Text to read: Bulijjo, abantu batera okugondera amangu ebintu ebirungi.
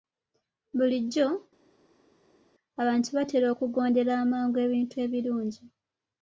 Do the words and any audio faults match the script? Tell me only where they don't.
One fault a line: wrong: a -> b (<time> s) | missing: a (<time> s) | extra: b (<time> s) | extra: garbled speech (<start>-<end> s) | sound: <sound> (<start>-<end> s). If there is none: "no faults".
no faults